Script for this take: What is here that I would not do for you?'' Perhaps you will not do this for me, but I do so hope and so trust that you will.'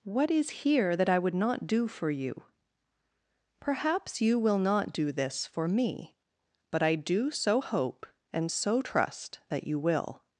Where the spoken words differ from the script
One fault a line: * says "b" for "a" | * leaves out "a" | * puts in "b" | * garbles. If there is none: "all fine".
all fine